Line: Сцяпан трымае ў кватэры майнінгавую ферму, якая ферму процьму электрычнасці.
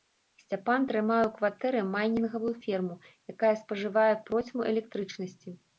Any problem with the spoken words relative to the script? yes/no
yes